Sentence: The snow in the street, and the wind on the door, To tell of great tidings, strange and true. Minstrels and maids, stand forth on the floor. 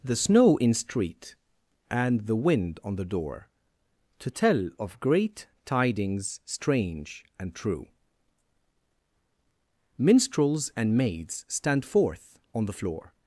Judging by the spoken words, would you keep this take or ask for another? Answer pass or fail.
fail